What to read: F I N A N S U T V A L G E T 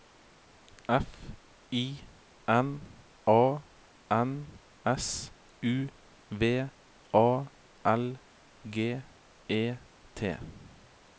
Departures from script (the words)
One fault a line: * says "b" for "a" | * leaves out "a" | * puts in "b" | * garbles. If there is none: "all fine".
* leaves out "T"